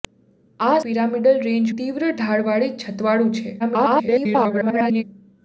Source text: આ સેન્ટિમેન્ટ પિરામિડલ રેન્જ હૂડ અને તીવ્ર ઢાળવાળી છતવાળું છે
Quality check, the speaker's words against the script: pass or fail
fail